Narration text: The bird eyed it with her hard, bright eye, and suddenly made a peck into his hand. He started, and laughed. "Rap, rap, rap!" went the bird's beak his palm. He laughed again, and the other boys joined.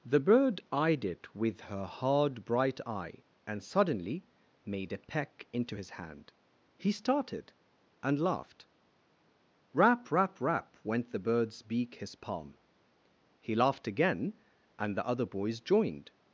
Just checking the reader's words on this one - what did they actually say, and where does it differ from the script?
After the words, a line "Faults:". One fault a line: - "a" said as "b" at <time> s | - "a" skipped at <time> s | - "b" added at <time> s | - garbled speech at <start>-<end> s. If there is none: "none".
The bird eyed it with her hard, bright eye, and suddenly made a peck into his hand. He started, and laughed. "Rap, rap, rap!" went the bird's beak his palm. He laughed again, and the other boys joined.
Faults:
none